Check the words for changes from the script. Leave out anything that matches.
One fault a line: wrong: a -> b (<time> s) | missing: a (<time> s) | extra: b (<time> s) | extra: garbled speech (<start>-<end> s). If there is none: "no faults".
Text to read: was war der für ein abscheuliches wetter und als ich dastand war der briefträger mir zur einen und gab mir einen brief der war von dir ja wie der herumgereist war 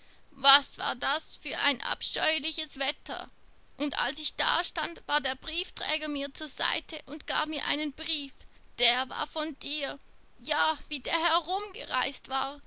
wrong: der -> das (0.9 s)
wrong: einen -> seite (6.5 s)